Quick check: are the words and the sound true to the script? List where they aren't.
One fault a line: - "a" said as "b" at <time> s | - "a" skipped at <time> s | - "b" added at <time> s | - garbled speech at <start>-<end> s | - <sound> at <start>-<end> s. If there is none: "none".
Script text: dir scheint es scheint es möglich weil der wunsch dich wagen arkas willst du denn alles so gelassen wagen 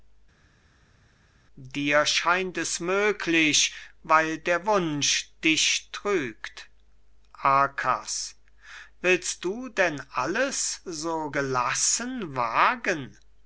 - "scheint es" skipped at 2.8 s
- "wagen" said as "trügt" at 5.9 s